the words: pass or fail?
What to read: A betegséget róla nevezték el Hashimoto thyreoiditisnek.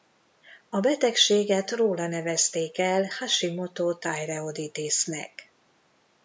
pass